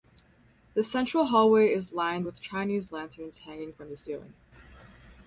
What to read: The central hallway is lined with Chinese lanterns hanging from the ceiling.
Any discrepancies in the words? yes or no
no